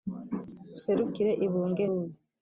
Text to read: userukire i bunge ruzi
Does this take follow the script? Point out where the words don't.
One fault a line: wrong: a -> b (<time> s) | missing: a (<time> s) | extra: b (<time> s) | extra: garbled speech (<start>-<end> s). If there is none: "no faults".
no faults